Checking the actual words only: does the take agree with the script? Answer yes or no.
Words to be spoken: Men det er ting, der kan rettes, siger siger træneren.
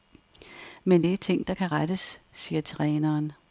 no